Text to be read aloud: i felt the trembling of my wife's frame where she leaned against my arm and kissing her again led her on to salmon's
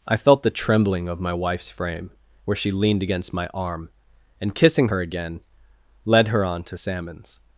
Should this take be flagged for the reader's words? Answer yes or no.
no